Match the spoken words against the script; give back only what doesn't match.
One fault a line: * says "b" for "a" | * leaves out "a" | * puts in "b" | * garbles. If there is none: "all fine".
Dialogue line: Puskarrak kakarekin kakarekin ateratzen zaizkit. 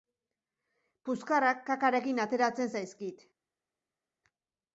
* leaves out "kakarekin"